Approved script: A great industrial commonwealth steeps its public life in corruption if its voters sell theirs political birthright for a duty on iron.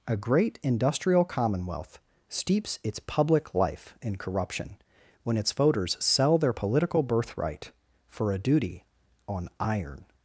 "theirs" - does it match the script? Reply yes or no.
no